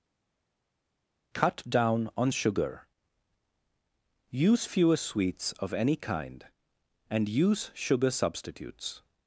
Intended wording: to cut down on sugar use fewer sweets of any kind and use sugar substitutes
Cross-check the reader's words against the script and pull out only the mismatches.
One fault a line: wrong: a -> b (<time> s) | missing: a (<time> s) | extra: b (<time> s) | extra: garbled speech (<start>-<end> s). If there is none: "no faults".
missing: to (1.3 s)